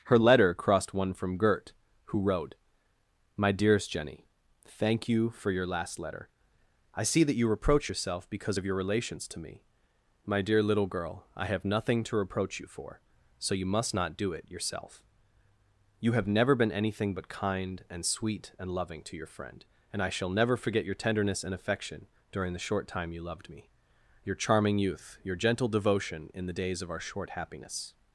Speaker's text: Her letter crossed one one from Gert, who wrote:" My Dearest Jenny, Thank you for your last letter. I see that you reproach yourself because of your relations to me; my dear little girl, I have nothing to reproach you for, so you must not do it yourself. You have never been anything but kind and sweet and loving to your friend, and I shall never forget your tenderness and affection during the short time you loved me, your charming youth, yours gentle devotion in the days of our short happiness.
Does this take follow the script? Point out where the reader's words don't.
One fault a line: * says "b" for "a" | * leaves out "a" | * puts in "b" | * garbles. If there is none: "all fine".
* leaves out "one"
* says "your" for "yours"